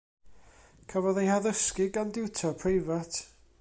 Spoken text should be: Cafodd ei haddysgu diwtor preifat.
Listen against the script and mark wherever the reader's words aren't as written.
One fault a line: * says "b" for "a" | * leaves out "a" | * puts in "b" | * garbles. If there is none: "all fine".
* puts in "gan"